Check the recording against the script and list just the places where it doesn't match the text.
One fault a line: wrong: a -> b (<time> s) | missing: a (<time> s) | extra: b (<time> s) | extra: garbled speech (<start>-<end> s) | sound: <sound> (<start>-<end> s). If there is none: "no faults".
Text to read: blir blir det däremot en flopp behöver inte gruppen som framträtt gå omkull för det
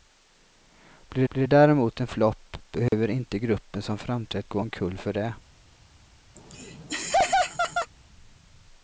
sound: dropout (2.9-2.9 s)
sound: laugh (6.4-7.9 s)